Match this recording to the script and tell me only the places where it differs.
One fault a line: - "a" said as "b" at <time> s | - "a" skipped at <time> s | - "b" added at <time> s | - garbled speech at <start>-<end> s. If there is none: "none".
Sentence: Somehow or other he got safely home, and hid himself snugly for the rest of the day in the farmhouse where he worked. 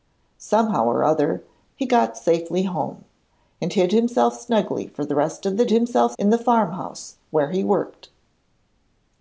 - "day" said as "himself" at 5.7 s